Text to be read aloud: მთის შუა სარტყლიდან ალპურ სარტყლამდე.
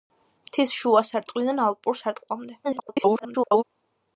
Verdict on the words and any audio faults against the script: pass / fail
fail